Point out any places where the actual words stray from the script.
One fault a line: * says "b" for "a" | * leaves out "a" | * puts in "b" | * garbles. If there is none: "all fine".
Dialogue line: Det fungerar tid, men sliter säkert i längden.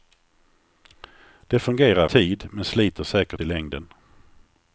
all fine